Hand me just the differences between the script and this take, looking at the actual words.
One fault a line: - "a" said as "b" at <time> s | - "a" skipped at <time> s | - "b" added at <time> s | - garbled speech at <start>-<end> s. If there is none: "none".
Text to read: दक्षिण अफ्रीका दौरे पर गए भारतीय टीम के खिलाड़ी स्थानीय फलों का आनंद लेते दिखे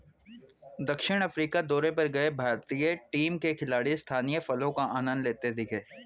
none